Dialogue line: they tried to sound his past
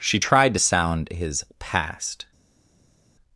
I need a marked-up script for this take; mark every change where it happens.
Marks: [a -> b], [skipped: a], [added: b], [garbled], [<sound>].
[they -> she] tried to sound his past